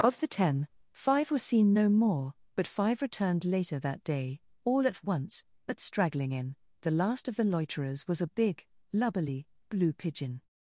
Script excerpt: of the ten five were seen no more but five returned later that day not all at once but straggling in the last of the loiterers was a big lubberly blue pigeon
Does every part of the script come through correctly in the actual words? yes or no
no